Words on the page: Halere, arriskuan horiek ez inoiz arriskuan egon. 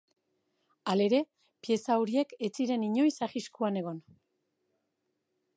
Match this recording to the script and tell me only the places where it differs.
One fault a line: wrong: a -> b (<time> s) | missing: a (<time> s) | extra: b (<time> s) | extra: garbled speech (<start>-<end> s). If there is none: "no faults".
wrong: arriskuan -> pieza (1.7 s)
extra: ziren (2.6 s)